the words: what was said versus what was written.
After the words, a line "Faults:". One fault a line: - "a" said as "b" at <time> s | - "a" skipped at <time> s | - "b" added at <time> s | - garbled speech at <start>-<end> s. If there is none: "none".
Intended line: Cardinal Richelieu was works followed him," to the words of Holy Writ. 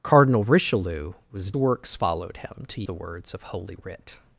Cardinal Richelieu was works followed him," to the words of Holy Writ.
Faults:
none